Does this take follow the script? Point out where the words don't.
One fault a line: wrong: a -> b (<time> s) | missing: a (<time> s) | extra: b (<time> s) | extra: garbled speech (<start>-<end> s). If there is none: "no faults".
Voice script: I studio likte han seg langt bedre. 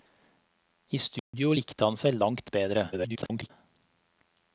extra: garbled speech (2.9-3.5 s)